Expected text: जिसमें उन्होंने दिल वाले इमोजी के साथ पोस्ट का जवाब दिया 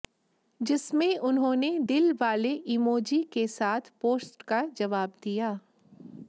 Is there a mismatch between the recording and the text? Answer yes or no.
no